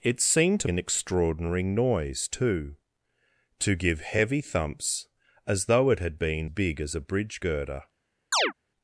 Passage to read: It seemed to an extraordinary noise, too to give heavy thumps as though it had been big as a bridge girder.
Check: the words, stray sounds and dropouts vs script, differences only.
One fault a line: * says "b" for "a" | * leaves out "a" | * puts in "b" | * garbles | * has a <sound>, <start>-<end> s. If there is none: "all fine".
* has a chirp, 8.3-8.5 s